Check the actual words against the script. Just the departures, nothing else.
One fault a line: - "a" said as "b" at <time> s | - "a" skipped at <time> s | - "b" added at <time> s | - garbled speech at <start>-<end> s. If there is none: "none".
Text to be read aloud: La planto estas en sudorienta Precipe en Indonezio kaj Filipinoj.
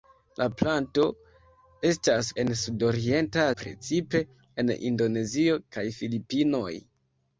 none